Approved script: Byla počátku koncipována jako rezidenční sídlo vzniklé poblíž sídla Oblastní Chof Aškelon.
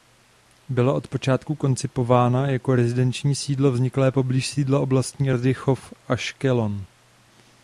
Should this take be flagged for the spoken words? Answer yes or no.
yes